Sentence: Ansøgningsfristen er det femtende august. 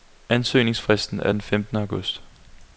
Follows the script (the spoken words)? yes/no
no